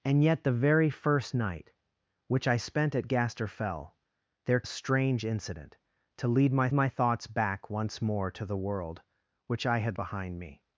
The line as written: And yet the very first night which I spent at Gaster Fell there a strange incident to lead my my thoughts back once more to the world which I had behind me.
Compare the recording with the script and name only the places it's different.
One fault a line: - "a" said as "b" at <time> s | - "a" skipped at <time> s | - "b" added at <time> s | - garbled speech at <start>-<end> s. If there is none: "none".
none